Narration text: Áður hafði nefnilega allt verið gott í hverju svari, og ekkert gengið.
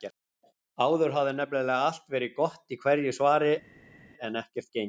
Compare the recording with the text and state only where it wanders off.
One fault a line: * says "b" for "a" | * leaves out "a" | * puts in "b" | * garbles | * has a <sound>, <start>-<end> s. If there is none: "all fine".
* says "en" for "og"